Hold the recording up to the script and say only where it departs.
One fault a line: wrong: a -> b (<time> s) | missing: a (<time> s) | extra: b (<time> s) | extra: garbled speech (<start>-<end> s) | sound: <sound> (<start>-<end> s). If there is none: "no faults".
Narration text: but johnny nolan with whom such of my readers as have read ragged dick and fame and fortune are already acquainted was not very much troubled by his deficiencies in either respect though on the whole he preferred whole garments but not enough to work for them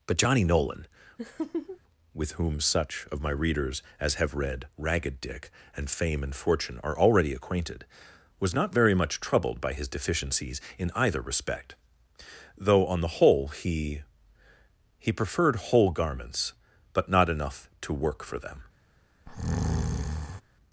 sound: laugh (1.2-1.8 s)
extra: he (15.0 s)
sound: breath (19.3-20.4 s)